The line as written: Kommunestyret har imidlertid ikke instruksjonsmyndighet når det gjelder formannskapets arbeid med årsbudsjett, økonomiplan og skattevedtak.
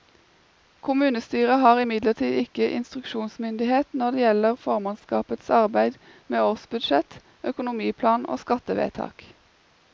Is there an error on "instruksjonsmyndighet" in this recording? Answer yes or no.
no